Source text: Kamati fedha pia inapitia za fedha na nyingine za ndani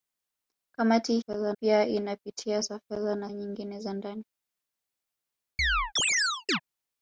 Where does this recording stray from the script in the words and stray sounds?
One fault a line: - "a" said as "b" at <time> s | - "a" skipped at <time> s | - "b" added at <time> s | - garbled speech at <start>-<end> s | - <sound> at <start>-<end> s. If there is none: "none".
- chirp at 5.6-6.6 s